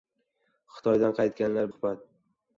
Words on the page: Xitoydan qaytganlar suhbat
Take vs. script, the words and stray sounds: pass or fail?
pass